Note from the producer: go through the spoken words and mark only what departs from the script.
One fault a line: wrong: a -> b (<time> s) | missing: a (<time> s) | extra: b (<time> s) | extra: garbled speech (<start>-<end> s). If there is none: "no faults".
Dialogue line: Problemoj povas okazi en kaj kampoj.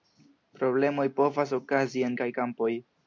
no faults